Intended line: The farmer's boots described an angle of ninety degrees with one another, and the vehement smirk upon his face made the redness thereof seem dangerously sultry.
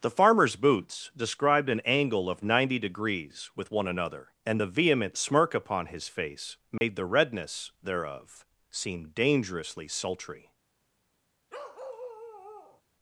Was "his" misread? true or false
false